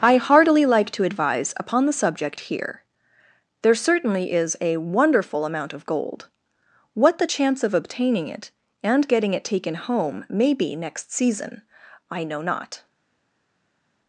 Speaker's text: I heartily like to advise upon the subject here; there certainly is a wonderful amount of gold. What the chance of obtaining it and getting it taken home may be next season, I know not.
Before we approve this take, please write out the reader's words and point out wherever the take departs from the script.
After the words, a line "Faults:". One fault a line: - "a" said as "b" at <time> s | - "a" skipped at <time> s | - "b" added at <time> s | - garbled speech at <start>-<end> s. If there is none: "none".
I heartily like to advise upon the subject here; there certainly is a wonderful amount of gold. What the chance of obtaining it and getting it taken home may be next season, I know not.
Faults:
none